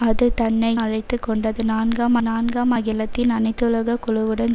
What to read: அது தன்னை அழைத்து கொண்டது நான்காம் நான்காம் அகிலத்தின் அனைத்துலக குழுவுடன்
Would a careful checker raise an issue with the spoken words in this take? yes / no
no